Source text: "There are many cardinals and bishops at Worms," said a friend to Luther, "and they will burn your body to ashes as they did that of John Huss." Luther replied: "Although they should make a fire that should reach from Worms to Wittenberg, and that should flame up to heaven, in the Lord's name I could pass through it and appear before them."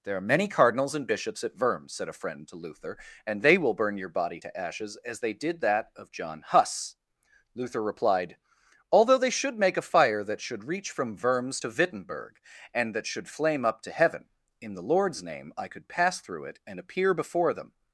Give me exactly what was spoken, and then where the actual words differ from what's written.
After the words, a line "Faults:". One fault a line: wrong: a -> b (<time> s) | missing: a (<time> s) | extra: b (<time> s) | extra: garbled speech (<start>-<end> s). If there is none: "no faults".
"There are many cardinals and bishops at Worms," said a friend to Luther, "and they will burn your body to ashes as they did that of John Huss." Luther replied: "Although they should make a fire that should reach from Worms to Wittenberg, and that should flame up to heaven, in the Lord's name I could pass through it and appear before them."
Faults:
no faults